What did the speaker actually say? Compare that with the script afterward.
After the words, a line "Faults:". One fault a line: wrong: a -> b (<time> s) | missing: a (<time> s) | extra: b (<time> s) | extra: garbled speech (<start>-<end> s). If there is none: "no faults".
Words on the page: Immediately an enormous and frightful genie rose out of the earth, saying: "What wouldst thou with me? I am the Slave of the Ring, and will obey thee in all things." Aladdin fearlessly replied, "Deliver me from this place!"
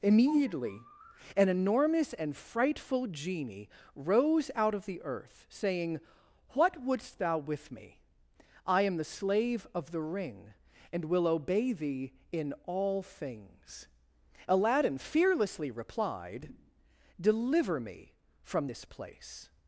Immediately an enormous and frightful genie rose out of the earth, saying: "What wouldst thou with me? I am the Slave of the Ring, and will obey thee in all things." Aladdin fearlessly replied, "Deliver me from this place!"
Faults:
no faults